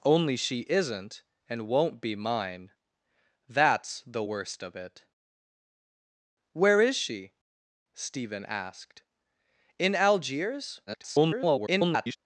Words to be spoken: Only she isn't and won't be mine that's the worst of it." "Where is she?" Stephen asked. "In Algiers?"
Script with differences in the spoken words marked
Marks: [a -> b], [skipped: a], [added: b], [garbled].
Only she isn't and won't be mine that's the worst of it." "Where is she?" Stephen asked. "In Algiers?" [garbled]